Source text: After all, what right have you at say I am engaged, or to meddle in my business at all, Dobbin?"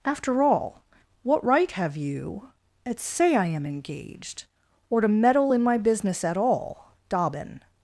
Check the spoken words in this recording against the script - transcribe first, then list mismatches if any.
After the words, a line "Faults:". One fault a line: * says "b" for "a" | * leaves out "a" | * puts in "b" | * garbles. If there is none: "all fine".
After all, what right have you at say I am engaged, or to meddle in my business at all, Dobbin?"
Faults:
all fine